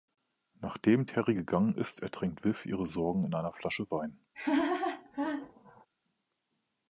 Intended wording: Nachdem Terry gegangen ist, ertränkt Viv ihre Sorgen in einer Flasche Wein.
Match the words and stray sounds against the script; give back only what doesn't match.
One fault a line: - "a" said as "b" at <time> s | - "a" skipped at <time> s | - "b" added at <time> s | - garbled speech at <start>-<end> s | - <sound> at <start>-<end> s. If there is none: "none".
- laugh at 4.3-5.9 s